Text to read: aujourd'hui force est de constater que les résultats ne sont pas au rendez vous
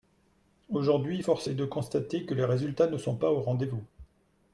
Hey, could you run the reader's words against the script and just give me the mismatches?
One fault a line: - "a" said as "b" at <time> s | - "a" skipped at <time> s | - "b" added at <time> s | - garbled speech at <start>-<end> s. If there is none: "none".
none